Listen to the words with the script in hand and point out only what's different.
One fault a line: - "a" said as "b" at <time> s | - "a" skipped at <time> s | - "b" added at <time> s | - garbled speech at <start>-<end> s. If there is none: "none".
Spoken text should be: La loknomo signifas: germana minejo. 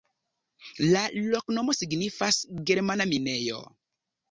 none